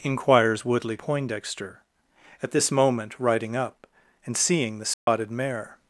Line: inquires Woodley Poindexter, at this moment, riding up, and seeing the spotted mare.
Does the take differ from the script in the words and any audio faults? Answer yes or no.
yes